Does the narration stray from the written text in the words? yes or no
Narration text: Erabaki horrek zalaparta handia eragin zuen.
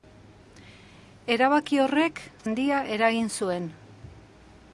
yes